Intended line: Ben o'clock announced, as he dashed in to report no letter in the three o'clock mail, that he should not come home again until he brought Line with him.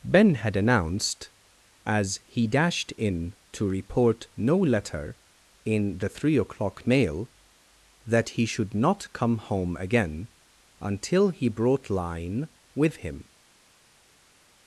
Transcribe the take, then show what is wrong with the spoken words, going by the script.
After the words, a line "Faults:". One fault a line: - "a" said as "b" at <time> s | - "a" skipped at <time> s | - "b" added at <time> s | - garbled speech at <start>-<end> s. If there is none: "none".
Ben had announced, as he dashed in to report no letter in the three o'clock mail, that he should not come home again until he brought Line with him.
Faults:
- "o'clock" said as "had" at 0.3 s